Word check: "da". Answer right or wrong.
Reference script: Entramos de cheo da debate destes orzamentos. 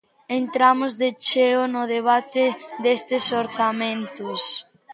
wrong